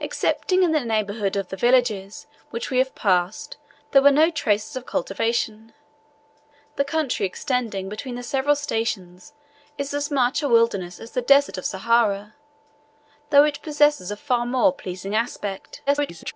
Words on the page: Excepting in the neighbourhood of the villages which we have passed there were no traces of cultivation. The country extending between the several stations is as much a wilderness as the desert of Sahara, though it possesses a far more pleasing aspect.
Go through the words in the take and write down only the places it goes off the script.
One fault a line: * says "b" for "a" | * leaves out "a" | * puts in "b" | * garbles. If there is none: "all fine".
* garbles